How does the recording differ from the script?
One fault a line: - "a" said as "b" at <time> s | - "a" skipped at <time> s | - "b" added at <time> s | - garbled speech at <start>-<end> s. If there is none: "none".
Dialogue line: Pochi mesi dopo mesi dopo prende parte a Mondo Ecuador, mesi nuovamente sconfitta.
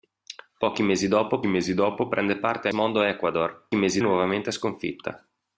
none